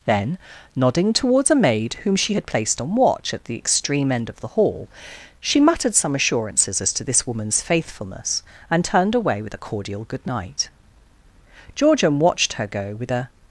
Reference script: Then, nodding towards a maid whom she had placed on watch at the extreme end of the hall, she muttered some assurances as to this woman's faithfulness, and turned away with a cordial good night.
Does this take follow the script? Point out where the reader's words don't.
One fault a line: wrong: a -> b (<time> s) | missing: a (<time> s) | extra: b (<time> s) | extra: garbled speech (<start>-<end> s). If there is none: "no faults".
extra: Georgian watched her go with a (11.8 s)